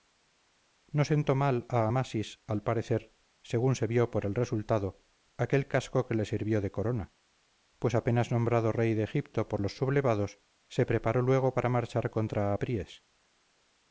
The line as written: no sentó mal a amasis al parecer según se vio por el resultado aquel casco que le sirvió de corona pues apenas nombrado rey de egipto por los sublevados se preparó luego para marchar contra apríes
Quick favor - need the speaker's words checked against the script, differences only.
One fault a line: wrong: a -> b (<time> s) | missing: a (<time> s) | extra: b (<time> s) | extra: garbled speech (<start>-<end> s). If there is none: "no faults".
no faults